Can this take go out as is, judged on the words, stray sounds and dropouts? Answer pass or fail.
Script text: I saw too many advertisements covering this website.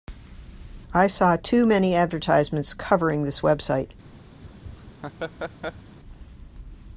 fail